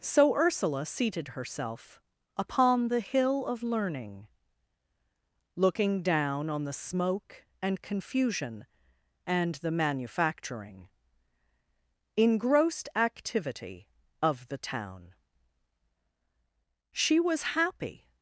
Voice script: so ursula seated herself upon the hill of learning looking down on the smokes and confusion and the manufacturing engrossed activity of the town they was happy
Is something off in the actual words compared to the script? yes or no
yes